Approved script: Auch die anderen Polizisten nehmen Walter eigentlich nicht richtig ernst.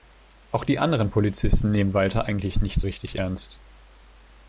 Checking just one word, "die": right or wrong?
right